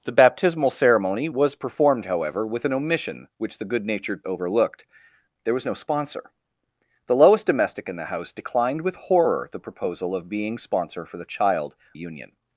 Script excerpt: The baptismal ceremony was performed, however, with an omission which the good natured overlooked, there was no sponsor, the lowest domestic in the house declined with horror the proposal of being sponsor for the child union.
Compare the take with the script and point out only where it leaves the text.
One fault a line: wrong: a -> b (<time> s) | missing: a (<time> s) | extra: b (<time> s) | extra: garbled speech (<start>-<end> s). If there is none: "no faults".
no faults